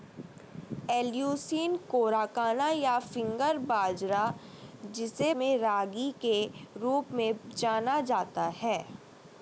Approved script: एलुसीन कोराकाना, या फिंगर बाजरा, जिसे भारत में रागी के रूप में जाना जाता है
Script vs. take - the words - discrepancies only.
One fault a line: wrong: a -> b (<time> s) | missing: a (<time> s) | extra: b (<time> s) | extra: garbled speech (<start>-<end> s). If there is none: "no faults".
missing: भारत (5.3 s)